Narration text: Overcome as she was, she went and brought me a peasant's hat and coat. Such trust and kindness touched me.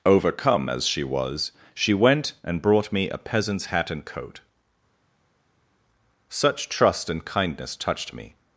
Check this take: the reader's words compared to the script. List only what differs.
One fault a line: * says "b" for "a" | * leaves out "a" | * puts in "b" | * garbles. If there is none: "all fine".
all fine